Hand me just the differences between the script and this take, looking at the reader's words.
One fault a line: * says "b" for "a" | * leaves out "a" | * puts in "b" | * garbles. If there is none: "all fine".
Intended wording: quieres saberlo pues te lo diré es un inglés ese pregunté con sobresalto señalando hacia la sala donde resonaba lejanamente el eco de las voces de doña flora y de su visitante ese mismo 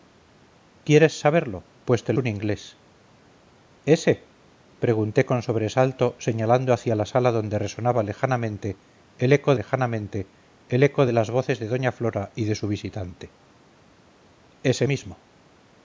* leaves out "lo diré es"
* puts in "lejanamente el eco"